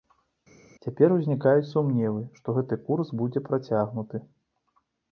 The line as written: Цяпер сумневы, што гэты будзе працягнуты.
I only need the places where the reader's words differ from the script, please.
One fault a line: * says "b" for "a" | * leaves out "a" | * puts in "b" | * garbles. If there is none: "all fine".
* puts in "узнікаюць"
* puts in "курс"